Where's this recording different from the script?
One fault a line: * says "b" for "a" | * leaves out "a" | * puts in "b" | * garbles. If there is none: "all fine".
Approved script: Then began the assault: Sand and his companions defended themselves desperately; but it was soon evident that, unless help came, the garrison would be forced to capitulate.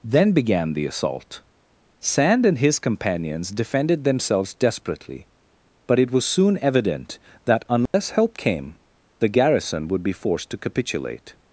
all fine